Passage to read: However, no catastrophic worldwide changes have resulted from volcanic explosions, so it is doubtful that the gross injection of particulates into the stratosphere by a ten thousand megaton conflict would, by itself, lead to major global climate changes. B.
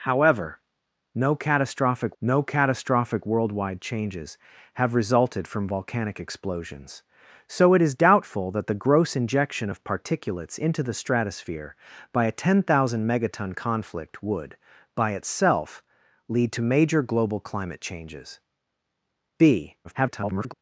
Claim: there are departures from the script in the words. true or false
true